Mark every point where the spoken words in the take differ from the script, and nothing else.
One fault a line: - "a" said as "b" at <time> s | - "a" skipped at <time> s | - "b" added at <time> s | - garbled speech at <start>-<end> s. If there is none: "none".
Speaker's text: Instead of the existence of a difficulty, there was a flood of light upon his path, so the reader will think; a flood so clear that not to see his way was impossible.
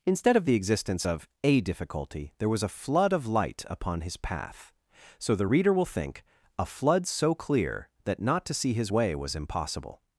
none